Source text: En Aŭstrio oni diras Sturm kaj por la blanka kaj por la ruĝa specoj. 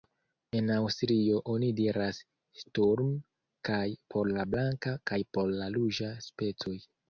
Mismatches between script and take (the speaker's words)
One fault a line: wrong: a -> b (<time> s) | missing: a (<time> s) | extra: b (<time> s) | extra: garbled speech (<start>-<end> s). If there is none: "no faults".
no faults